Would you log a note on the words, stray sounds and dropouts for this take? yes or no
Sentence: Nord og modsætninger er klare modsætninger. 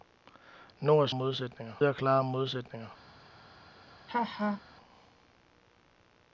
yes